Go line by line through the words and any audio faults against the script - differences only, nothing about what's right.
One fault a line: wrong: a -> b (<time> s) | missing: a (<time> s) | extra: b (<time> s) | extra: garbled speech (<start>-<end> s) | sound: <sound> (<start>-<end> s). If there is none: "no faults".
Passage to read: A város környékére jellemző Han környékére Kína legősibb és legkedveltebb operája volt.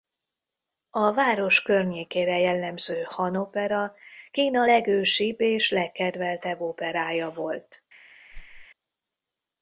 wrong: környékére -> opera (3.4 s)
sound: whoosh (8.3-8.7 s)